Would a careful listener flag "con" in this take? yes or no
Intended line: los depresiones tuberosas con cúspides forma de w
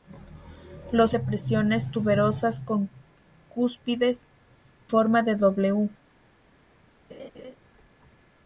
no